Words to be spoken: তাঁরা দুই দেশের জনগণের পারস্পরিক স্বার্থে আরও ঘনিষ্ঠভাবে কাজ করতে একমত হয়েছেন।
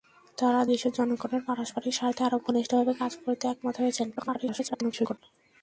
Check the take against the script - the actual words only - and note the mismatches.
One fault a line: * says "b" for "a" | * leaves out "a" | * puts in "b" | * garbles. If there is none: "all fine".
* leaves out "দুই"
* garbles